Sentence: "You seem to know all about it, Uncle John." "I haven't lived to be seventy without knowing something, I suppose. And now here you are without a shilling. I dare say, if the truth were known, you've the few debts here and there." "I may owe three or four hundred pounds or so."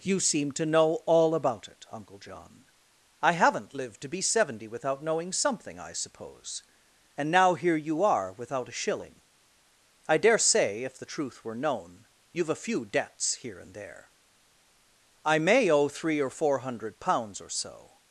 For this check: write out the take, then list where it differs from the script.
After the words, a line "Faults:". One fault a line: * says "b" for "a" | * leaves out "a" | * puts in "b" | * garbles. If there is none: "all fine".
"You seem to know all about it, Uncle John." "I haven't lived to be seventy without knowing something, I suppose. And now here you are without a shilling. I dare say, if the truth were known, you've a few debts here and there." "I may owe three or four hundred pounds or so."
Faults:
* says "a" for "the"